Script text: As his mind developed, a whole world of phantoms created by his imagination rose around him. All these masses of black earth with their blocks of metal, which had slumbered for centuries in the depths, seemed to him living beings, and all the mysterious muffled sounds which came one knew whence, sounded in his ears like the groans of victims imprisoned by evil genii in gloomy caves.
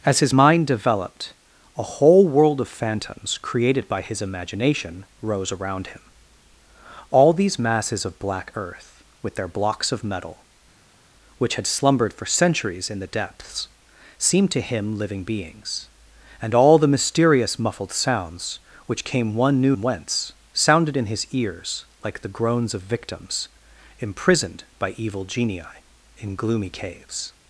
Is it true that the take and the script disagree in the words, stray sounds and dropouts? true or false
false